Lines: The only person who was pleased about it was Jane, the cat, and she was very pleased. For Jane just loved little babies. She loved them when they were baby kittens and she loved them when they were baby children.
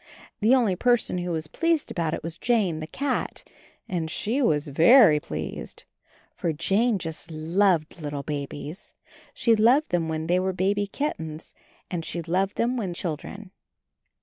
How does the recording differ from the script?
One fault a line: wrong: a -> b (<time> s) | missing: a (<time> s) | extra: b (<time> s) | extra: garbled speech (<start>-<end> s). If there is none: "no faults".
missing: they were baby (12.9 s)